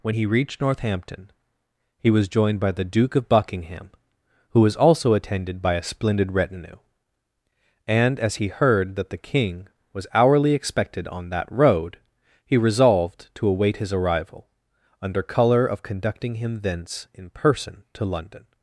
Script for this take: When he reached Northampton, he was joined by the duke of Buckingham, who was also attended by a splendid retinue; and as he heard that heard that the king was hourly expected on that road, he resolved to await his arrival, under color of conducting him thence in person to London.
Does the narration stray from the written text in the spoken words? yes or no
yes